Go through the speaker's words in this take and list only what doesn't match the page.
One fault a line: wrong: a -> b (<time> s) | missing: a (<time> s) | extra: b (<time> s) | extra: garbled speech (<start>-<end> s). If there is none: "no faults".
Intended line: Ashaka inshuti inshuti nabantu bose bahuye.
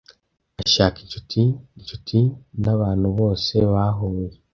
no faults